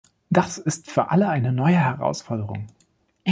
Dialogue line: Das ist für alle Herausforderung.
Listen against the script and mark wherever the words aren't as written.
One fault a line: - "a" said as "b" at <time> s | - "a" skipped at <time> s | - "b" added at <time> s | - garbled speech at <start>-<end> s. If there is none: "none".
- "eine neue" added at 1.3 s